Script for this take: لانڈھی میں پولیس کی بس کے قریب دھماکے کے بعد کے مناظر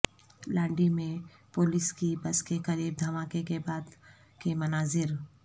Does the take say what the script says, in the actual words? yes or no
yes